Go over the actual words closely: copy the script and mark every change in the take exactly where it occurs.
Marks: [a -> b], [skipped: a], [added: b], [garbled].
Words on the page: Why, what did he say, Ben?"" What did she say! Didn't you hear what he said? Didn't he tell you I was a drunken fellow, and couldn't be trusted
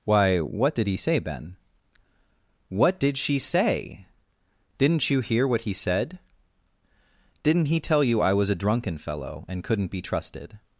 Why, what did he say, Ben?"" What did she say! Didn't you hear what he said? Didn't he tell you I was a drunken fellow, and couldn't be trusted